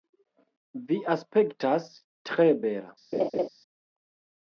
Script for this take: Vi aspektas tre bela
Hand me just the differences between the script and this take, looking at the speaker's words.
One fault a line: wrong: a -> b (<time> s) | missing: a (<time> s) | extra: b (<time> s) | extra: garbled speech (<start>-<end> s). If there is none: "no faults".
no faults